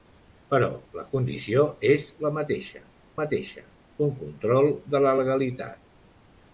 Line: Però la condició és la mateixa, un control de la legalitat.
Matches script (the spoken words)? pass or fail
fail